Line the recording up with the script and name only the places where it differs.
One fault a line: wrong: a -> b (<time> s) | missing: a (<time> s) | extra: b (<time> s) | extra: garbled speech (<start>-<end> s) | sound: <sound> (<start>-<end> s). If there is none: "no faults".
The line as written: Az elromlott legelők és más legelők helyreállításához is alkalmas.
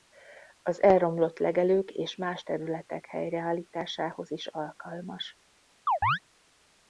wrong: legelők -> területek (2.4 s)
sound: chirp (5.9-6.2 s)